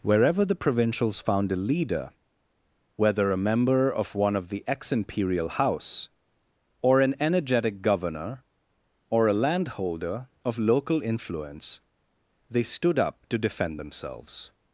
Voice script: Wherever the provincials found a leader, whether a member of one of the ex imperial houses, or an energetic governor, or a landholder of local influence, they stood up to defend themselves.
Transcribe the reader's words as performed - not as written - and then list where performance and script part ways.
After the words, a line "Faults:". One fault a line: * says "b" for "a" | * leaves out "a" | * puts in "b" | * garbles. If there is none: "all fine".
Wherever the provincials found a leader, whether a member of one of the ex imperial house, or an energetic governor, or a landholder of local influence, they stood up to defend themselves.
Faults:
* says "house" for "houses"